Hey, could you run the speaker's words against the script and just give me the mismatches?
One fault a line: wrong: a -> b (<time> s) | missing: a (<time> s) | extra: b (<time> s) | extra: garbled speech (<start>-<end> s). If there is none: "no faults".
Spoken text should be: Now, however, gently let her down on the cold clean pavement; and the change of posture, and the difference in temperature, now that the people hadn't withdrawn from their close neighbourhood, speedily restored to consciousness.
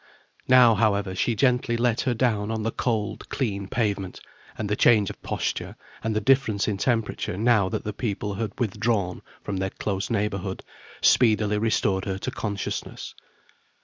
extra: she (1.1 s)
wrong: hadn't -> had (8.3 s)
extra: her (12.0 s)